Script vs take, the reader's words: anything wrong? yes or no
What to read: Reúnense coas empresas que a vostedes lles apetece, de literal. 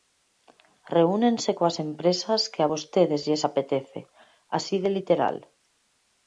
yes